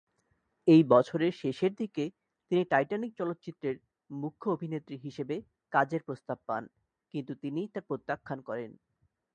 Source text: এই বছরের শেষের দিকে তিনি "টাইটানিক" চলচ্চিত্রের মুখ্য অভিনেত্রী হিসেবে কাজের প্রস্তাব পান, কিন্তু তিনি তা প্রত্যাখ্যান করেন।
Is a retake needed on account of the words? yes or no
no